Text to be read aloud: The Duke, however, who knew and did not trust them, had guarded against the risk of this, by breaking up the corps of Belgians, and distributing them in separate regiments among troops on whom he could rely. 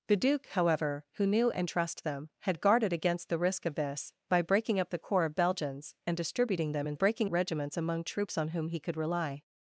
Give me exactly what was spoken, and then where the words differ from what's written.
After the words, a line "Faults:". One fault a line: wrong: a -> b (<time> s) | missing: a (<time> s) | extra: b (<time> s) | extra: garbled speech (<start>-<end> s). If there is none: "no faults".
The Duke, however, who knew and trust them, had guarded against the risk of this, by breaking up the corps of Belgians, and distributing them in breaking regiments among troops on whom he could rely.
Faults:
missing: did not (1.7 s)
wrong: separate -> breaking (6.9 s)